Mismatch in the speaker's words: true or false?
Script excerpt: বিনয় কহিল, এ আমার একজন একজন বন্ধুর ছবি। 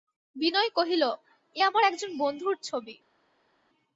true